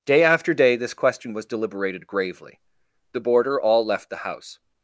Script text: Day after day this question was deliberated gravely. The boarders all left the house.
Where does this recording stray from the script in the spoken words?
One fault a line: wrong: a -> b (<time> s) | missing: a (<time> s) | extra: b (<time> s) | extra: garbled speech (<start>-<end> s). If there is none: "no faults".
wrong: boarders -> boarder (3.2 s)